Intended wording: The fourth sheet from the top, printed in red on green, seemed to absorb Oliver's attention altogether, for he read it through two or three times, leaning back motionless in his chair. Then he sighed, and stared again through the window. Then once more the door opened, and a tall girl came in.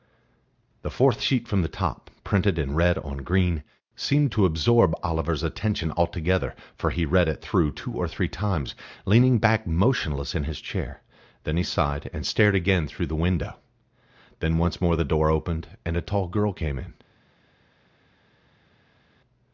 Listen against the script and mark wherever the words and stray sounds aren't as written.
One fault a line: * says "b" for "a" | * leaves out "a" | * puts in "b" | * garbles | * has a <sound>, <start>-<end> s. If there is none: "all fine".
all fine